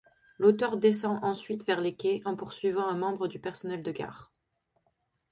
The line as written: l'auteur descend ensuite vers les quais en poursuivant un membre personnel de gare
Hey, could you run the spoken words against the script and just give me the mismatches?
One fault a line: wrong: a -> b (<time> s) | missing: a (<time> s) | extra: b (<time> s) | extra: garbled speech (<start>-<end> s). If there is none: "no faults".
extra: du (3.3 s)